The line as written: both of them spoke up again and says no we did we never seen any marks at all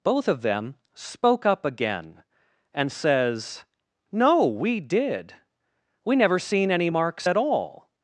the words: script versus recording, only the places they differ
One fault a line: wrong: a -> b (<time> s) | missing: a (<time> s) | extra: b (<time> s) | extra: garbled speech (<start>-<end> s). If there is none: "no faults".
no faults